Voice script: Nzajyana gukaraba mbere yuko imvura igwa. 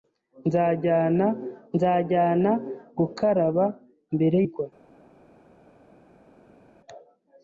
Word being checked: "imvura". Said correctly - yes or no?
no